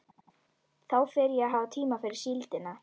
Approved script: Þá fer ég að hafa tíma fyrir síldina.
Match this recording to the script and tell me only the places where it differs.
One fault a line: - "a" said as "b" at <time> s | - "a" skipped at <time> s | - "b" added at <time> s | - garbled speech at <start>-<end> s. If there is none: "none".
none